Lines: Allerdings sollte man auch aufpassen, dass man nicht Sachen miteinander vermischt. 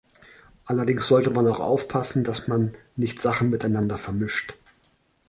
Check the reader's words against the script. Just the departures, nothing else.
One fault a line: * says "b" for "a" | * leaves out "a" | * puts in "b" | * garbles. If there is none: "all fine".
all fine